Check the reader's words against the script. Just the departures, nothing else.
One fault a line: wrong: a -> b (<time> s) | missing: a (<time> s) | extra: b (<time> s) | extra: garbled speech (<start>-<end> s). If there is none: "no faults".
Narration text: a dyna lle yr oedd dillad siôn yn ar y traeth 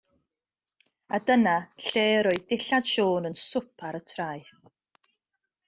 extra: swp (3.5 s)